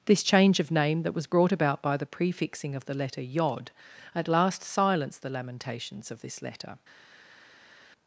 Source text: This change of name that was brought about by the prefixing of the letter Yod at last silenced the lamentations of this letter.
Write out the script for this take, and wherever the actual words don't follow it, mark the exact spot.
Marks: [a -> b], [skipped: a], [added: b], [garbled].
This change of name that was brought about by the prefixing of the letter Yod at last silenced the lamentations of this letter.